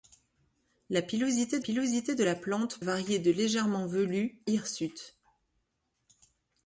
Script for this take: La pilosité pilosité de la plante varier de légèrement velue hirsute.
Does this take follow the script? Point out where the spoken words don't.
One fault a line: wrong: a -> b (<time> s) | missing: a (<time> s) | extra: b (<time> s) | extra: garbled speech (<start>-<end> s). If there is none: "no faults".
no faults